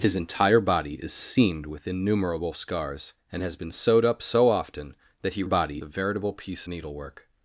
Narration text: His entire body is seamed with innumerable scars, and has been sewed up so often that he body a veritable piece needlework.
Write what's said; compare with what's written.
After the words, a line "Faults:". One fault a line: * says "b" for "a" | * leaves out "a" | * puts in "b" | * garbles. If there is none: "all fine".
His entire body is seamed with innumerable scars, and has been sewed up so often that he body a veritable piece needlework.
Faults:
all fine